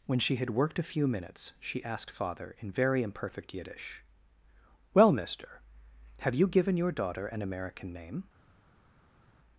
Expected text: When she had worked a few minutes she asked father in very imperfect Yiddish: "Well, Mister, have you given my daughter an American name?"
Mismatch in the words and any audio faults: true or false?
true